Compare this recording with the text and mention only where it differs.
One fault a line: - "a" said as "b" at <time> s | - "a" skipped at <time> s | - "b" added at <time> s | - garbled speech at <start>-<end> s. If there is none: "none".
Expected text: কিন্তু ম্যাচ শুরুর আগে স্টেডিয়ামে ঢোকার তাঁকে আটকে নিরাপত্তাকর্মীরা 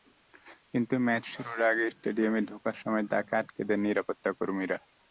- "সময়" added at 2.8 s
- "দেন" added at 3.7 s